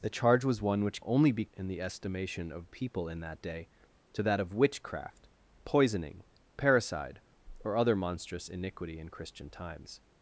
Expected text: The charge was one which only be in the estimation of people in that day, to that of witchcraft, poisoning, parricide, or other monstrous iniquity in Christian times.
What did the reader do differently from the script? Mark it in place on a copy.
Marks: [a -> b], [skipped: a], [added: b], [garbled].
The charge was one which only be in the estimation of people in that day, to that of witchcraft, poisoning, parricide, or other monstrous iniquity in Christian times.